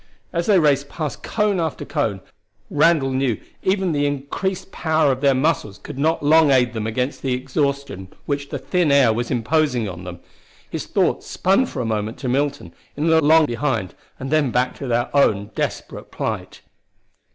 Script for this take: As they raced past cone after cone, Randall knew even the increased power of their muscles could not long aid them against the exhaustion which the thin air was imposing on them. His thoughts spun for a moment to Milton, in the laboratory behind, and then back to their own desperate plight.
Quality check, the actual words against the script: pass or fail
fail